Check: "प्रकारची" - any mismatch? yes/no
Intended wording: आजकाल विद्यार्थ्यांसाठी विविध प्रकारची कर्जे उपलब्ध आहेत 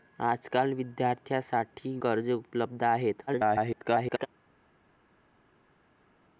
yes